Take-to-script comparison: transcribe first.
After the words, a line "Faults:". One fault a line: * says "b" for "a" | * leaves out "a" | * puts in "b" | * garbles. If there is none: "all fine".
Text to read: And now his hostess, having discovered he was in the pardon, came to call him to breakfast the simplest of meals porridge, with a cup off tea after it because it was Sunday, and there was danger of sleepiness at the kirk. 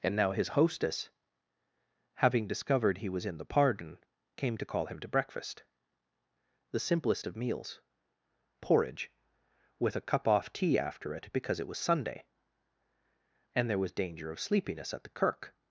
And now his hostess, having discovered he was in the pardon, came to call him to breakfast the simplest of meals porridge, with a cup off tea after it because it was Sunday, and there was danger of sleepiness at the kirk.
Faults:
all fine